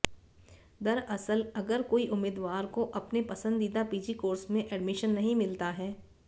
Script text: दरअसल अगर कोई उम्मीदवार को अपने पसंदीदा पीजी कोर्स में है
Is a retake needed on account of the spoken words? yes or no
yes